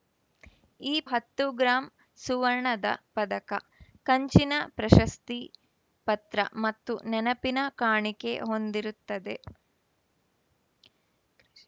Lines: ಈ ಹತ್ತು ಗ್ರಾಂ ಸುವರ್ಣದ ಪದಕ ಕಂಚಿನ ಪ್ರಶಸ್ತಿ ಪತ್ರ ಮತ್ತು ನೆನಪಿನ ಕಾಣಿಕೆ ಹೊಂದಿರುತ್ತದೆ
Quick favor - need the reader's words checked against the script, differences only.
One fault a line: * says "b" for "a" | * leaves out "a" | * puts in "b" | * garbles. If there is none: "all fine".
all fine